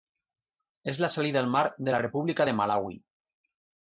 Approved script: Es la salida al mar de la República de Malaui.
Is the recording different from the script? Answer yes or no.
no